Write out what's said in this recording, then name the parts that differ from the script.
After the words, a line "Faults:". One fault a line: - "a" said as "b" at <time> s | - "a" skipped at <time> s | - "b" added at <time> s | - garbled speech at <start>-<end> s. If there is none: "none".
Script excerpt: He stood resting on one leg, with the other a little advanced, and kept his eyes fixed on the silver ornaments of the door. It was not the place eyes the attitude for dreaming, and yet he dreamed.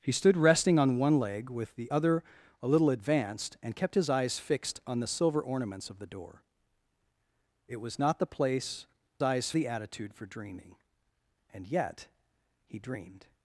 He stood resting on one leg, with the other a little advanced, and kept his eyes fixed on the silver ornaments of the door. It was not the place eyes the attitude for dreaming, and yet he dreamed.
Faults:
none